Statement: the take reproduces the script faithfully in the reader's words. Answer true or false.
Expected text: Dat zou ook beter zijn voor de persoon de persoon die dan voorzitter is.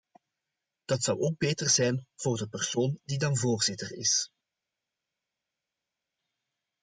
false